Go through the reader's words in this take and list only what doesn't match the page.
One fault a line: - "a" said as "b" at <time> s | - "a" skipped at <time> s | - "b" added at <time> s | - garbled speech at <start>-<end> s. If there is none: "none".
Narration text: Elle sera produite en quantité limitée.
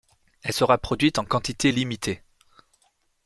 none